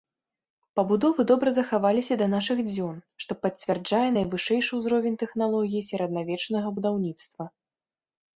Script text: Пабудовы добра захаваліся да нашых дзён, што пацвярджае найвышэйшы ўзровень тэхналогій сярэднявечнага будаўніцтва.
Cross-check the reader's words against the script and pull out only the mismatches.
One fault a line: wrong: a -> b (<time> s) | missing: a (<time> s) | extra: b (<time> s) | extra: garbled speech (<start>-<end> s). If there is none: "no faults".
no faults